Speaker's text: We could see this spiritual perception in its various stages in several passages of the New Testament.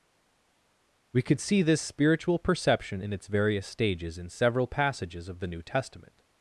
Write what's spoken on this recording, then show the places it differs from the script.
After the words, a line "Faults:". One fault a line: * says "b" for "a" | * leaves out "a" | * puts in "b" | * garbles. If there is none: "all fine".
We could see this spiritual perception in its various stages in several passages of the New Testament.
Faults:
all fine